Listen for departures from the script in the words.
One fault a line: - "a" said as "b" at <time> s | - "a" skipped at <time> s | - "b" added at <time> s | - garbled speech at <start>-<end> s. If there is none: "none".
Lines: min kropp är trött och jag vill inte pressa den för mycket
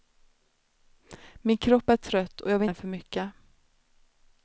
- "inte pressa" skipped at 2.6 s